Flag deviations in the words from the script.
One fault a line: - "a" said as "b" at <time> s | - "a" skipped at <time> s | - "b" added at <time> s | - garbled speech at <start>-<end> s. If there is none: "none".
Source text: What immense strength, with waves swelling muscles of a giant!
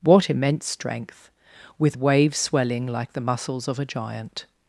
- "like the" added at 2.9 s